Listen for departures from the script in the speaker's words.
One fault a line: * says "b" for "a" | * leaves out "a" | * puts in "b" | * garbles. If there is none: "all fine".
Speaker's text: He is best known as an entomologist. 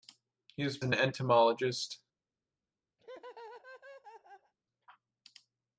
* leaves out "best known as"